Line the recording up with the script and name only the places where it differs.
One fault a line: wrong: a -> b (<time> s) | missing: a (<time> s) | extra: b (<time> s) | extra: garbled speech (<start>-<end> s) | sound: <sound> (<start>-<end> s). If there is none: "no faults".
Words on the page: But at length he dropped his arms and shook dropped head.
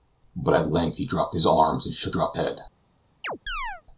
sound: chirp (3.2-3.8 s)